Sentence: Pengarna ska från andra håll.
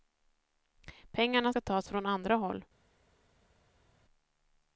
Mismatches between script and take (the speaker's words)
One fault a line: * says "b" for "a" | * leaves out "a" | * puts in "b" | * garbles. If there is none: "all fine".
* puts in "tas"